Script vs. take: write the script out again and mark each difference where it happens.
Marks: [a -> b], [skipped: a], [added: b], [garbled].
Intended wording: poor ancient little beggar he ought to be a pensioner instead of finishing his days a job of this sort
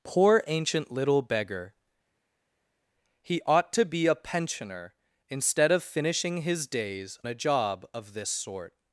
poor ancient little beggar he ought to be a pensioner instead of finishing his days a job of this sort